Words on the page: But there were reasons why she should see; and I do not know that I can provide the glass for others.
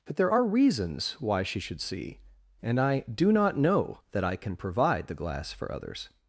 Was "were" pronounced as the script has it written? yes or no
no